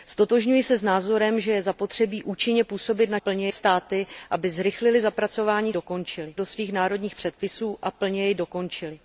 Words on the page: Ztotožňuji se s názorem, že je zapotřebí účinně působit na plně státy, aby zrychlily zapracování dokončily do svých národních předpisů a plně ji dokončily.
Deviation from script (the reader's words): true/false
false